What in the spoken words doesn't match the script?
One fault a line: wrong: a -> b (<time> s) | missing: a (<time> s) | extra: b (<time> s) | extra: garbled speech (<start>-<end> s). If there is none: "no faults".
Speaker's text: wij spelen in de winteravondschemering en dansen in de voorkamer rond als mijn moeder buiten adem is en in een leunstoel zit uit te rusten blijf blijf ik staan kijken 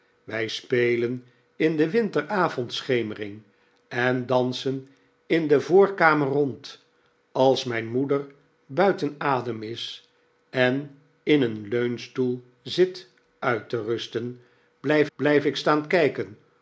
no faults